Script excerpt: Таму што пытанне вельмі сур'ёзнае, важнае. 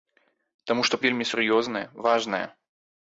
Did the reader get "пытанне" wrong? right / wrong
wrong